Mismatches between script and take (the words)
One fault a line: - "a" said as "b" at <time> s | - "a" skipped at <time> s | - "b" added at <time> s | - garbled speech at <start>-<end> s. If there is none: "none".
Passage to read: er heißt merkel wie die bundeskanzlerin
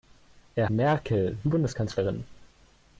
- "heißt" skipped at 0.7 s
- "die" skipped at 1.5 s